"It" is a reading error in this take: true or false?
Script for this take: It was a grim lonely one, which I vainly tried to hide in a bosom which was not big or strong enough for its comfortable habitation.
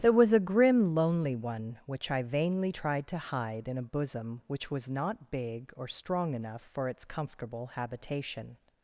true